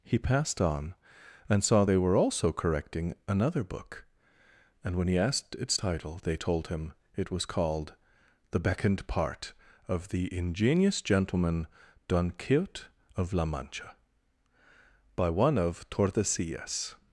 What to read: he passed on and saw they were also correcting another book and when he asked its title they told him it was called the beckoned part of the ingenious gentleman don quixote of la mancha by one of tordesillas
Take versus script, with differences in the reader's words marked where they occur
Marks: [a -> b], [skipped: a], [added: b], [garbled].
he passed on and saw they were also correcting another book and when he asked its title they told him it was called the beckoned part of the ingenious gentleman don quixote of la mancha by one of tordesillas